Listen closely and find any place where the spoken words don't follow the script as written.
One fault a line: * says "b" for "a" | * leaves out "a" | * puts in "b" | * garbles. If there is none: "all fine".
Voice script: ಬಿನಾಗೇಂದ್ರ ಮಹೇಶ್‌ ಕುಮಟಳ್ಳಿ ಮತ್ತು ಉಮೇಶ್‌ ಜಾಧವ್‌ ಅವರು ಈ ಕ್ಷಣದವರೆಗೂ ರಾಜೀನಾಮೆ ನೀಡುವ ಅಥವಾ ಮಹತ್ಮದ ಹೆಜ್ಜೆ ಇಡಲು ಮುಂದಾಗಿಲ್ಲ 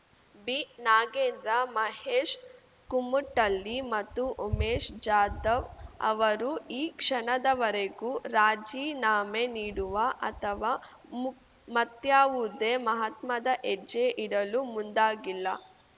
* puts in "ಮು ಮತ್ಯಾವುದೇ"